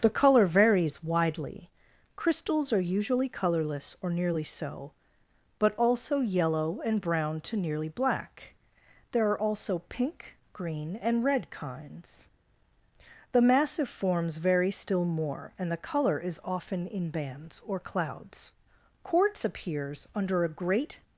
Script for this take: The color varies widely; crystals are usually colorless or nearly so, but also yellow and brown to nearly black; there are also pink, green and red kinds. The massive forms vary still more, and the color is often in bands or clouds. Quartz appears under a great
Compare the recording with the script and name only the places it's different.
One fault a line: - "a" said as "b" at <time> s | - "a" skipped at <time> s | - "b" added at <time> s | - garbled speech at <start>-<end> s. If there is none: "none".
none